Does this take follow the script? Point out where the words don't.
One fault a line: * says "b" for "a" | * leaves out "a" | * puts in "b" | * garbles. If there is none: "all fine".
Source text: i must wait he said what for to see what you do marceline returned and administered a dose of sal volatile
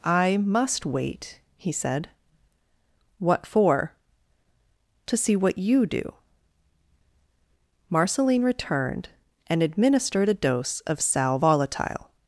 all fine